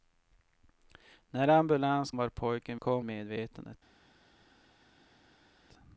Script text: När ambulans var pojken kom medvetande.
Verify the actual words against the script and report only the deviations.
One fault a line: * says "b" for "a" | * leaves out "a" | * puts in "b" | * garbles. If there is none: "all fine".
all fine